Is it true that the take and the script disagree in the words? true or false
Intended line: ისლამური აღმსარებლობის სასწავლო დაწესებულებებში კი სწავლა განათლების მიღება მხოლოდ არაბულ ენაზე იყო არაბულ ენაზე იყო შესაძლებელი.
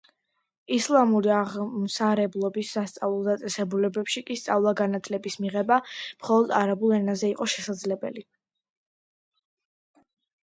true